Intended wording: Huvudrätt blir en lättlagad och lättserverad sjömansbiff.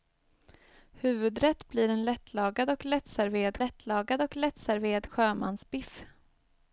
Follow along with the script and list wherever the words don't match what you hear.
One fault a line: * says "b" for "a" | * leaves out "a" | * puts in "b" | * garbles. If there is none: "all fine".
* puts in "lättlagad och lättserverad"